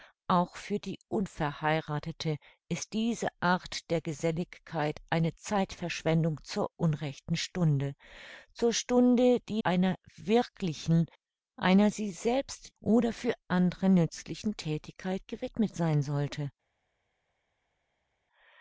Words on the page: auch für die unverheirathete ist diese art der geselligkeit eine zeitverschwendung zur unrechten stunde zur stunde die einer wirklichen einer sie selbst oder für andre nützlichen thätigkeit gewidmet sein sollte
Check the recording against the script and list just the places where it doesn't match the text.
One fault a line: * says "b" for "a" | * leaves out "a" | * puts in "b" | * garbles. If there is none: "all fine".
all fine